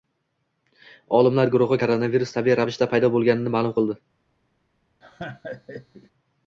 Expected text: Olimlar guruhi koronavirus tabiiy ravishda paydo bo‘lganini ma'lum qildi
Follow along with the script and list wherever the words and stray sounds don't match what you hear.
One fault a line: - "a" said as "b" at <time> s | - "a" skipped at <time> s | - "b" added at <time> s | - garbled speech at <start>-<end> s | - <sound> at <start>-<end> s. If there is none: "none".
- laugh at 5.0-6.1 s